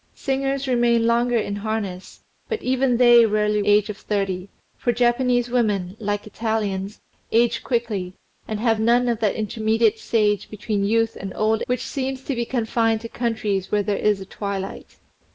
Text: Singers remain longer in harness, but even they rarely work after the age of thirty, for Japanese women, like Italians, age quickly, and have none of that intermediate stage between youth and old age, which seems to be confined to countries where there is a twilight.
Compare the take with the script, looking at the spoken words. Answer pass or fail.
fail